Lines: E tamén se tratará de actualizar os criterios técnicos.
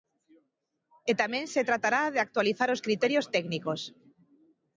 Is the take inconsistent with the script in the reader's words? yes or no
no